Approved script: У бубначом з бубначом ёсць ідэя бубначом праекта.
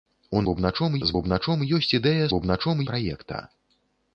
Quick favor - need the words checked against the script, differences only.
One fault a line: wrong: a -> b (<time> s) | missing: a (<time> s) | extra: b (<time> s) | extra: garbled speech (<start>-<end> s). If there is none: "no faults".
no faults